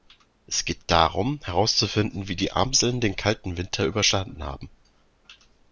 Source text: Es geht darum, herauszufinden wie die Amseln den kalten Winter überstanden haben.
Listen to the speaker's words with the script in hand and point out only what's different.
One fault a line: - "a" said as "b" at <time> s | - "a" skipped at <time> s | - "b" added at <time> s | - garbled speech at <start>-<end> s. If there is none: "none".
none